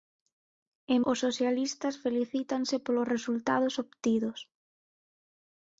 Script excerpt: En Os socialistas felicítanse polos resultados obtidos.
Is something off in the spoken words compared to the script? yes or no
no